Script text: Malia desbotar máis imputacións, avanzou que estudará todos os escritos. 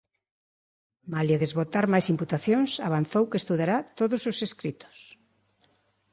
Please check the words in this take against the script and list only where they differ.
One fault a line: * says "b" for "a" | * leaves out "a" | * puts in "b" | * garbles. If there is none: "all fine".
all fine